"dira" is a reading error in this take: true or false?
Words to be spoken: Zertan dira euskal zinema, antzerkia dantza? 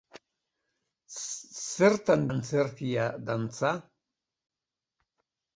true